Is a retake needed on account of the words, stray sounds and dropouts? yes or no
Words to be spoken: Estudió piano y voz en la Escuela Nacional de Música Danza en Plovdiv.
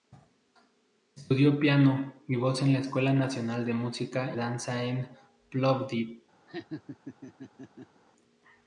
yes